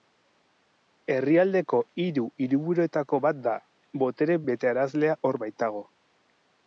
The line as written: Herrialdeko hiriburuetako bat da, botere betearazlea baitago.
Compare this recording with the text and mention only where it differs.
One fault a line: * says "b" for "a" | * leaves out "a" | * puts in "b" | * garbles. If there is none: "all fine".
* puts in "hiru"
* puts in "hor"